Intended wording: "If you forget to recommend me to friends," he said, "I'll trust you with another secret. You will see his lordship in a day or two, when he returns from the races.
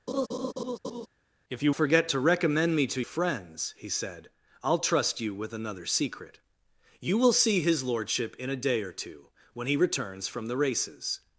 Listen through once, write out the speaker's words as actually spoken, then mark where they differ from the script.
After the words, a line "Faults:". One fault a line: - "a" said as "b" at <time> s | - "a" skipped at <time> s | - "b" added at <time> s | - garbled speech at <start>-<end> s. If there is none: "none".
"If you forget to recommend me to friends," he said, "I'll trust you with another secret. You will see his lordship in a day or two, when he returns from the races.
Faults:
none